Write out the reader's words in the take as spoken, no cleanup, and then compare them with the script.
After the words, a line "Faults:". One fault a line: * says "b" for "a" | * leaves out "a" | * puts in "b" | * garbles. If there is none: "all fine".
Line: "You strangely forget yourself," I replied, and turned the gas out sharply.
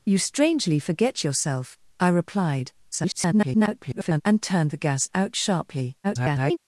"You strangely forget yourself," I replied, [garbled] and turned the gas out sharply. [garbled]
Faults:
* garbles
* garbles